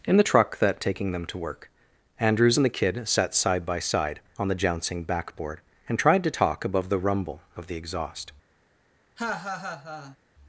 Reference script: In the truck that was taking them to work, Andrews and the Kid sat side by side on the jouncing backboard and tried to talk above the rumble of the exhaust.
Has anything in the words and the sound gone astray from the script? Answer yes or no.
yes